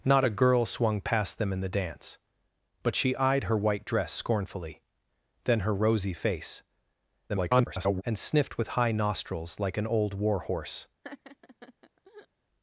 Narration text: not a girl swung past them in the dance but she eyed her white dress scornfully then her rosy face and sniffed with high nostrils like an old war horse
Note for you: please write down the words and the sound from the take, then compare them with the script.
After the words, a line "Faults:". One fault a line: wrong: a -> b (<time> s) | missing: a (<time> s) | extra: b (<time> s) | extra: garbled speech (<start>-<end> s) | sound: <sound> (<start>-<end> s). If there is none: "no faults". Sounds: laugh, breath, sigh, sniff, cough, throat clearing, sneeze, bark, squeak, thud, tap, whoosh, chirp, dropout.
not a girl swung past them in the dance but she eyed her white dress scornfully then her rosy face [garbled] and sniffed with high nostrils like an old war horse
Faults:
extra: garbled speech (7.3-8.0 s)
sound: laugh (11.0-12.3 s)